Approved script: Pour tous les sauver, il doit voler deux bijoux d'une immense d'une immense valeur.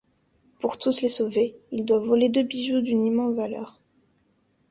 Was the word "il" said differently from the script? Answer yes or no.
no